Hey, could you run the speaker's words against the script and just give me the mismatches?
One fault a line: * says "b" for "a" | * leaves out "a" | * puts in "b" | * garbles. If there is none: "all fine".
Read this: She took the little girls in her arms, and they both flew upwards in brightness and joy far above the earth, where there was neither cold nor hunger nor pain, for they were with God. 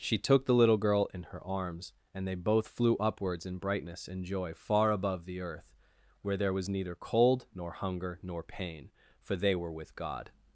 * says "girl" for "girls"